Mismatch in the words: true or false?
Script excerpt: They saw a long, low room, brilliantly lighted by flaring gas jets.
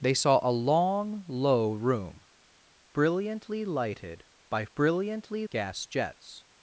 true